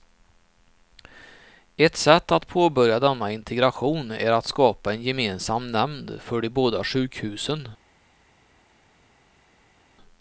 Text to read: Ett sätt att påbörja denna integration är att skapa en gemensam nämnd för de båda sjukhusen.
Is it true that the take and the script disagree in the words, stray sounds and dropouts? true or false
false